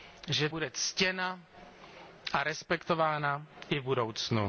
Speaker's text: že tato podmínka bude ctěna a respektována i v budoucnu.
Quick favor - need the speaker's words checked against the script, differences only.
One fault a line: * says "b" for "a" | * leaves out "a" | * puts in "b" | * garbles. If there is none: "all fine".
* leaves out "tato podmínka"